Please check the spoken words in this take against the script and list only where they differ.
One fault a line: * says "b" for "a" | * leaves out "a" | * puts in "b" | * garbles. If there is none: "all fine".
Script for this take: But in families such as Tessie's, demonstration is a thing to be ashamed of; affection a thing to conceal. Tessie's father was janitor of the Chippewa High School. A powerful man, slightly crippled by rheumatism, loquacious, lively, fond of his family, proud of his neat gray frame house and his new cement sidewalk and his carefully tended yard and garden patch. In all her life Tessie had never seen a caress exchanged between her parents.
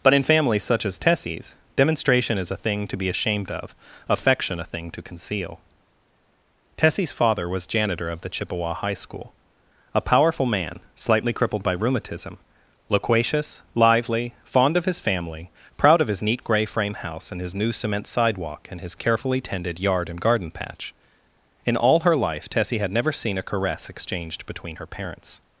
all fine